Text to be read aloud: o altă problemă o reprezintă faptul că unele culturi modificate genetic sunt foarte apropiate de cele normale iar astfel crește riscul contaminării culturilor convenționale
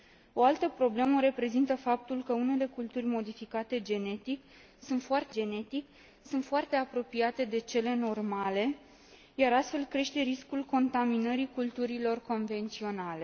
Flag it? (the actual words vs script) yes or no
yes